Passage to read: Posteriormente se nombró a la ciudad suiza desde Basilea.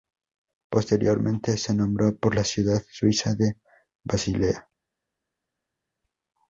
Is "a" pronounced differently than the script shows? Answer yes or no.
yes